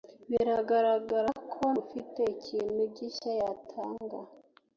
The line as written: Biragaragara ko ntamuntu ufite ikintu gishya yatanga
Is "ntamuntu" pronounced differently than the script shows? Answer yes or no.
yes